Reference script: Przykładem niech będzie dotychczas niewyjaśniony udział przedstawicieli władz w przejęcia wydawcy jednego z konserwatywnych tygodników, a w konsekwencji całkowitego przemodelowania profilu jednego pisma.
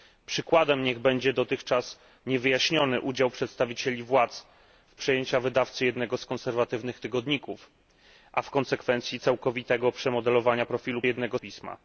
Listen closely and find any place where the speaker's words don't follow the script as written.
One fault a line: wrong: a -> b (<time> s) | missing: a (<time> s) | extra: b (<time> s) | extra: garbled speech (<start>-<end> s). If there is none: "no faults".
no faults